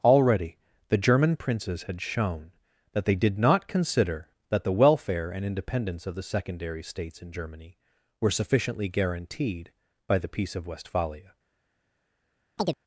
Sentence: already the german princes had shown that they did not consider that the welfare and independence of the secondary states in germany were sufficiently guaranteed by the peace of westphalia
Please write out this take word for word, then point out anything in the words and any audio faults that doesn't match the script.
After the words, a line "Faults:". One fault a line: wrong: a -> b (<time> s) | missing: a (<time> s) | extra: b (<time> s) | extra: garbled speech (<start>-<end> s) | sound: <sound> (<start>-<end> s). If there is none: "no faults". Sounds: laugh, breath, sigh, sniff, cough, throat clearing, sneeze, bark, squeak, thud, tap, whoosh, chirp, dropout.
already the german princes had shown that they did not consider that the welfare and independence of the secondary states in germany were sufficiently guaranteed by the peace of westphalia
Faults:
sound: chirp (12.6-12.8 s)